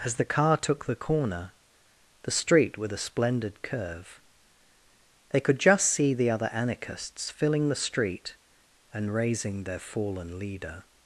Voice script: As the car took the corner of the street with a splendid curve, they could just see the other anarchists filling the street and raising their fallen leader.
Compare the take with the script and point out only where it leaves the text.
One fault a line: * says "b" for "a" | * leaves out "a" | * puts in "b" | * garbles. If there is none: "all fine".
* leaves out "of"